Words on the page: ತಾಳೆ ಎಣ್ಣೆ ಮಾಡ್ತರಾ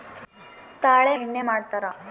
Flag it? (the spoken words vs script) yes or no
no